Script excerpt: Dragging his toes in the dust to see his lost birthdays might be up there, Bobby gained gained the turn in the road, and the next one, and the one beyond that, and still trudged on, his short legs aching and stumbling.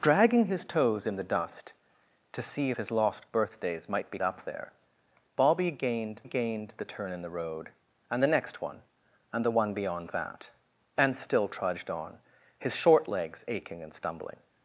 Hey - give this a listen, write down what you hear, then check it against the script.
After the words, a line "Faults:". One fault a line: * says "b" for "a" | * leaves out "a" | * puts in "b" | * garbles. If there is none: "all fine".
Dragging his toes in the dust to see his lost birthdays might be up there, Bobby gained gained the turn in the road, and the next one, and the one beyond that, and still trudged on, his short legs aching and stumbling.
Faults:
all fine